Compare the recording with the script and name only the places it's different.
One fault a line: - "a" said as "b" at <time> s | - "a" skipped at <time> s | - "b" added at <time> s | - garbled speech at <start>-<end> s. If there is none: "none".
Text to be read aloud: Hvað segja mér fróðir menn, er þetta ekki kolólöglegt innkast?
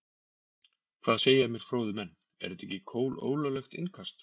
none